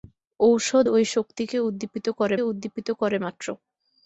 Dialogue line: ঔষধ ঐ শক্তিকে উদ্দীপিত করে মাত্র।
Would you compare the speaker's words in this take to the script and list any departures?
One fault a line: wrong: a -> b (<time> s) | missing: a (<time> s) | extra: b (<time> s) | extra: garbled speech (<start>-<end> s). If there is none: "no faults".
extra: উদ্দীপিত করে (2.4 s)